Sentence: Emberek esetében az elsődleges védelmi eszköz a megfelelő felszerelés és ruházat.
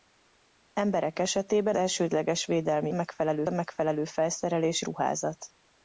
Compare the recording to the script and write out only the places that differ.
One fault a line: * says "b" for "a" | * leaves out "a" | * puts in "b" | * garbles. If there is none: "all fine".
* leaves out "az"
* says "megfelelő" for "eszköz"
* leaves out "és"